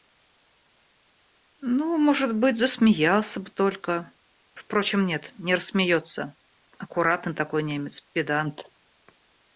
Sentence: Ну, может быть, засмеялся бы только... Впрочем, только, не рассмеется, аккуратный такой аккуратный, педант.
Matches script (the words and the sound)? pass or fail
fail